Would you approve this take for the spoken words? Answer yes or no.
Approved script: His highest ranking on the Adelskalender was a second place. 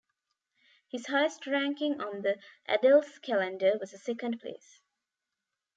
yes